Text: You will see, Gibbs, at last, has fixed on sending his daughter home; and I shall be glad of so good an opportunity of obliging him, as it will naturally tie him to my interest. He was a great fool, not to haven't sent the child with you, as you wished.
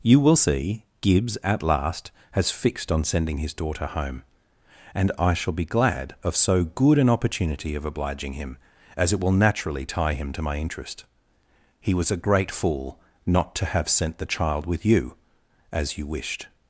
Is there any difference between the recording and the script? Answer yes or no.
yes